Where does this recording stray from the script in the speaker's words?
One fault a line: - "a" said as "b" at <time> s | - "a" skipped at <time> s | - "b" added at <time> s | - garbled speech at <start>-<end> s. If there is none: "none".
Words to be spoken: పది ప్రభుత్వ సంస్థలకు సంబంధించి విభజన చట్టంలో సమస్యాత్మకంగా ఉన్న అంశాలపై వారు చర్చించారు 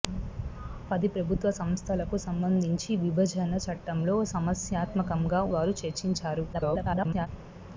- "ఉన్న అంశాలపై" skipped at 5.4 s
- garbled speech at 6.5-7.3 s